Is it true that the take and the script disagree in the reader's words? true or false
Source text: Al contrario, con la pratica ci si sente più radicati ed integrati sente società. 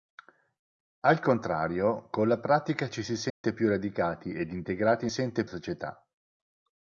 false